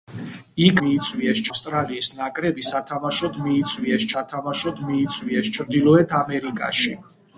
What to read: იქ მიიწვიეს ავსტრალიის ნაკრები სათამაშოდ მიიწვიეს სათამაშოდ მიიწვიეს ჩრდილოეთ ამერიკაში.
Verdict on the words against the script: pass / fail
pass